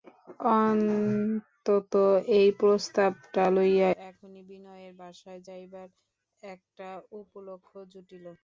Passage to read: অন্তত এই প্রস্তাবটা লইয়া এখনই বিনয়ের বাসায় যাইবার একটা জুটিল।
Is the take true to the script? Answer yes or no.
no